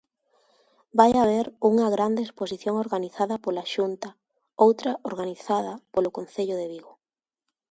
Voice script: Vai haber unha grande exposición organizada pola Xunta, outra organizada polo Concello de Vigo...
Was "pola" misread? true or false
false